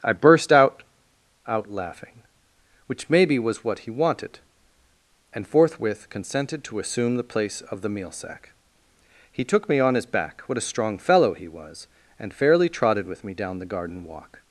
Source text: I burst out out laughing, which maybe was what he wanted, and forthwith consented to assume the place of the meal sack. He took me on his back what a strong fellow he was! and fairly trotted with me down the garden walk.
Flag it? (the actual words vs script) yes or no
no